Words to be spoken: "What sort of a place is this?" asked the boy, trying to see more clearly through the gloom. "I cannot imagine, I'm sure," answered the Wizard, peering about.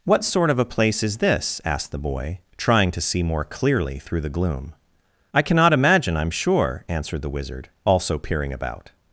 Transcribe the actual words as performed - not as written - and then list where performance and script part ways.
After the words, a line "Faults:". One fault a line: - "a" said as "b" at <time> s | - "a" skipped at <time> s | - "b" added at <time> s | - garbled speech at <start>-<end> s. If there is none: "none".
"What sort of a place is this?" asked the boy, trying to see more clearly through the gloom. "I cannot imagine, I'm sure," answered the Wizard, also peering about.
Faults:
- "also" added at 7.8 s